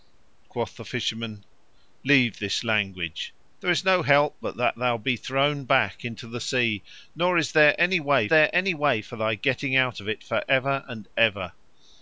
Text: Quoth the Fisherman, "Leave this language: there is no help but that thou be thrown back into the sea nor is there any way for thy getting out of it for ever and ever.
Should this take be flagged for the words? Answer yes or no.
yes